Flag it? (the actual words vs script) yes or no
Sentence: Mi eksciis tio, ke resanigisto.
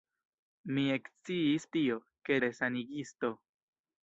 no